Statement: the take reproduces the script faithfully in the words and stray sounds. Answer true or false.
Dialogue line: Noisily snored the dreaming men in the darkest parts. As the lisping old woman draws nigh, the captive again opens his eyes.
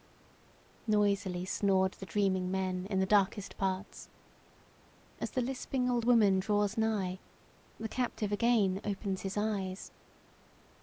true